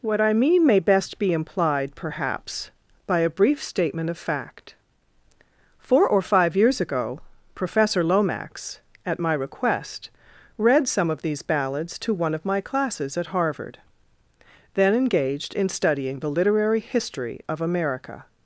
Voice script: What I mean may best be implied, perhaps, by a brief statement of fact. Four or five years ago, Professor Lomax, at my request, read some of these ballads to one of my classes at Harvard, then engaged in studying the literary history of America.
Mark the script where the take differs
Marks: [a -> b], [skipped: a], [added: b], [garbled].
What I mean may best be implied, perhaps, by a brief statement of fact. Four or five years ago, Professor Lomax, at my request, read some of these ballads to one of my classes at Harvard, then engaged in studying the literary history of America.